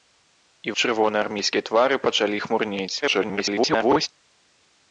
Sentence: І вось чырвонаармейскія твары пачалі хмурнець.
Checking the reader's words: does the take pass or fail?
fail